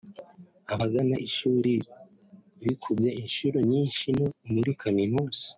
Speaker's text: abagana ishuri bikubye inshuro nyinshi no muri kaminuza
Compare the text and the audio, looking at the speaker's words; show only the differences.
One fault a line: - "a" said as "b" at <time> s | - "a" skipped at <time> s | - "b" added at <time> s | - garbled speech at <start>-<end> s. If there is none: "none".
none